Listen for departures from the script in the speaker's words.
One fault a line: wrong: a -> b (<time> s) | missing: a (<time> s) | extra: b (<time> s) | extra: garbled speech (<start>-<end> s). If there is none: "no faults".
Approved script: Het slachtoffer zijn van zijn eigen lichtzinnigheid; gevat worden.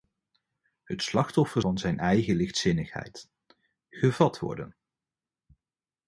missing: zijn (1.6 s)